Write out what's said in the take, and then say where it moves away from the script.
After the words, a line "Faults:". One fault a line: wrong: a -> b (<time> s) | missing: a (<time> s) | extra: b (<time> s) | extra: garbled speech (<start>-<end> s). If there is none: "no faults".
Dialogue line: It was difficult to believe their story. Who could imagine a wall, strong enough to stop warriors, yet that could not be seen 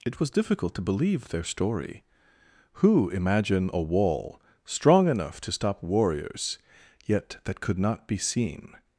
It was difficult to believe their story. Who imagine a wall, strong enough to stop warriors, yet that could not be seen
Faults:
missing: could (3.1 s)